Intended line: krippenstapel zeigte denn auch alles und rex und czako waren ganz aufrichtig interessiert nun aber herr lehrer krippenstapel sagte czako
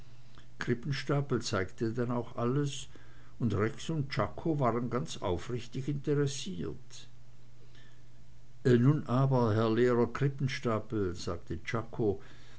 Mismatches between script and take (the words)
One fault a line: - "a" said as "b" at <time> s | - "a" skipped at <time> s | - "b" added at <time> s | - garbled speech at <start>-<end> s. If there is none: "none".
none